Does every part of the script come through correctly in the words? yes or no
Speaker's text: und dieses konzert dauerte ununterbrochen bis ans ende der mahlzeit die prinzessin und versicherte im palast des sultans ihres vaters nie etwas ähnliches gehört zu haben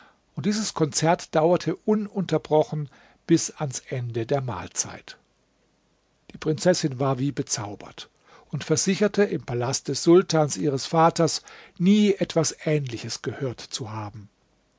no